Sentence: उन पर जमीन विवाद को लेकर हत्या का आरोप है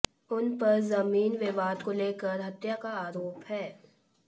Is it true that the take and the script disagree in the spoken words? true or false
false